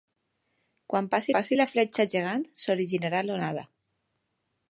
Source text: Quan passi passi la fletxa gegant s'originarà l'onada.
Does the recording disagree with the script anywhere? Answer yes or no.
no